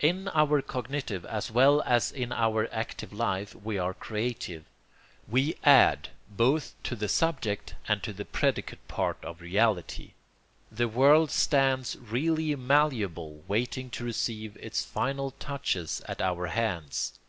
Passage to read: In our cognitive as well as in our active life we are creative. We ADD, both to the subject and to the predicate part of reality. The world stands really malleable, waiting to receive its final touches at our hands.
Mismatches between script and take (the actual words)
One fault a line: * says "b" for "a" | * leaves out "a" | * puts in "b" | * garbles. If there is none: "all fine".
all fine